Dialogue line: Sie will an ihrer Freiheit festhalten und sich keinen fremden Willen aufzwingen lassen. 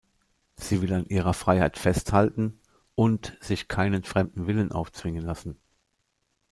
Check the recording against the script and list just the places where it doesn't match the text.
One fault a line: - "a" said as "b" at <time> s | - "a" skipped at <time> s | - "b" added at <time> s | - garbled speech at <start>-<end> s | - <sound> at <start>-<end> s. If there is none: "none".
none